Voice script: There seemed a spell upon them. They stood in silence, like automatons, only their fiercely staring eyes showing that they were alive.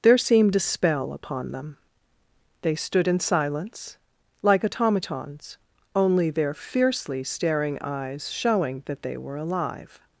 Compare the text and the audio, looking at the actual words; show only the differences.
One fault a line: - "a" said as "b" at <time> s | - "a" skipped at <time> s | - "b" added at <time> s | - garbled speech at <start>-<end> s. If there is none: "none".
none